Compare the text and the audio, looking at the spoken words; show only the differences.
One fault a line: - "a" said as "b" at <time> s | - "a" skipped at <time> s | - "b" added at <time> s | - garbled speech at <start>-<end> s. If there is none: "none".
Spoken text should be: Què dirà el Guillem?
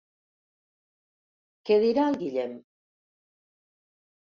none